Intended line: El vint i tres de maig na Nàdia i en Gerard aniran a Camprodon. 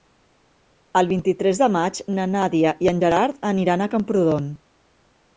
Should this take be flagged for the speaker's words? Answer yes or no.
no